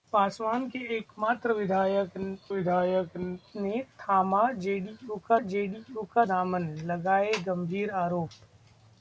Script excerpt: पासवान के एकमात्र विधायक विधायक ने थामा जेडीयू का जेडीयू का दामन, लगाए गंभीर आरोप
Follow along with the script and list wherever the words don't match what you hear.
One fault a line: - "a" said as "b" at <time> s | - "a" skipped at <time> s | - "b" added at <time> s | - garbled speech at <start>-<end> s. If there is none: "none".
none